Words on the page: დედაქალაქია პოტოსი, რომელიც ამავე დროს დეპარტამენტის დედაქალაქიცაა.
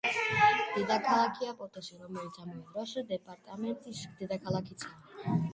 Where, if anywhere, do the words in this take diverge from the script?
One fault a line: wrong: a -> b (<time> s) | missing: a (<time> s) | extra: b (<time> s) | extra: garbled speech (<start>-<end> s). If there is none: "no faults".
no faults